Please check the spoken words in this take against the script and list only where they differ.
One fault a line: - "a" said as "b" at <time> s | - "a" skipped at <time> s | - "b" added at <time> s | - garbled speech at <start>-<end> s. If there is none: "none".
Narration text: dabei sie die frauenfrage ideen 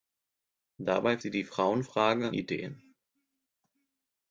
none